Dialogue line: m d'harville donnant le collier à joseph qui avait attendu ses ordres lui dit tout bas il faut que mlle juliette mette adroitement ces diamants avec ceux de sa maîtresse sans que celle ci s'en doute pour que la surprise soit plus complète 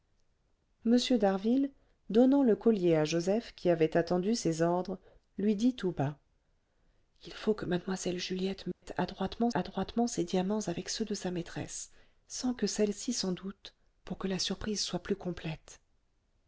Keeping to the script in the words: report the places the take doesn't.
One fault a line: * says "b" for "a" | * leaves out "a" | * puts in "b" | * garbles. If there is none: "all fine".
* puts in "adroitement"